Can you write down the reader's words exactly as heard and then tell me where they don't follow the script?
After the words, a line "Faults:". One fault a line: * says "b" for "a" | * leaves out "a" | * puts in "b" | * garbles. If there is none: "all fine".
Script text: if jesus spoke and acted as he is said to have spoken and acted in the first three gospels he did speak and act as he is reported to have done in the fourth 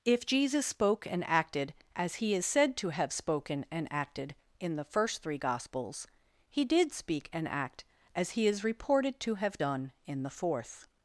if jesus spoke and acted as he is said to have spoken and acted in the first three gospels he did speak and act as he is reported to have done in the fourth
Faults:
all fine